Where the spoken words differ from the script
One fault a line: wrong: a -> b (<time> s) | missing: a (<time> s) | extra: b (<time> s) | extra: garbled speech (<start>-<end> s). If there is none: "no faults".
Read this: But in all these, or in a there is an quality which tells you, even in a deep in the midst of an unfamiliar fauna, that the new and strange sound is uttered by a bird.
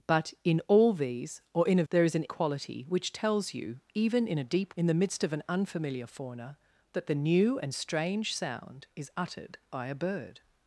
no faults